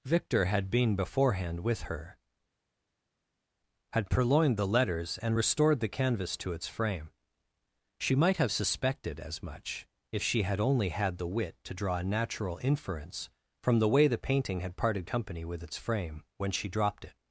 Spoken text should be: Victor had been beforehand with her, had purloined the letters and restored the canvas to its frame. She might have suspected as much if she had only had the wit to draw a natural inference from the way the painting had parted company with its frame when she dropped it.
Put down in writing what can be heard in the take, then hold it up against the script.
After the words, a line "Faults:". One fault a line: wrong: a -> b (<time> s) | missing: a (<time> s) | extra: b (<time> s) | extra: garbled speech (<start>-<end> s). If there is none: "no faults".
Victor had been beforehand with her, had purloined the letters and restored the canvas to its frame. She might have suspected as much if she had only had the wit to draw a natural inference from the way the painting had parted company with its frame when she dropped it.
Faults:
no faults